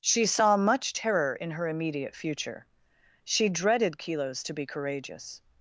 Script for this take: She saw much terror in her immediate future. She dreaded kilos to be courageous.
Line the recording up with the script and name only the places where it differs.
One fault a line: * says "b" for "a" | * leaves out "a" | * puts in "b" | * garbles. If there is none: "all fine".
all fine